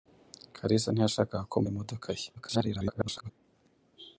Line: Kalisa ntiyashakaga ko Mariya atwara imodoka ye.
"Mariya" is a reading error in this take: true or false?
true